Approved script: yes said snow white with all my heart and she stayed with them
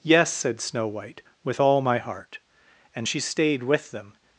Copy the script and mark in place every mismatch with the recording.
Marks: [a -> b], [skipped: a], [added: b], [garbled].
yes said snow white with all my heart and she stayed with them